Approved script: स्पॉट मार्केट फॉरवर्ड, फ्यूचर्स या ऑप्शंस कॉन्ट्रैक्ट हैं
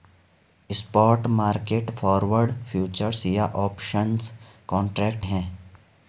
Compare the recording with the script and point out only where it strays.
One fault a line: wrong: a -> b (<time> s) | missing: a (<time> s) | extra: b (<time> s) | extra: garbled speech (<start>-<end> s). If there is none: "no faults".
no faults